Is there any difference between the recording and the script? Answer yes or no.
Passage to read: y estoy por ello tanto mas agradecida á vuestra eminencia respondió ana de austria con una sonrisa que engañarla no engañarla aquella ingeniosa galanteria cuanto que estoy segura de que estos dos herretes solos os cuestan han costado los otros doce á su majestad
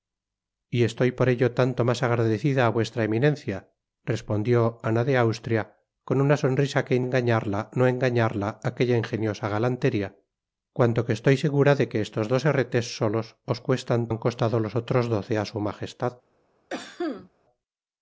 no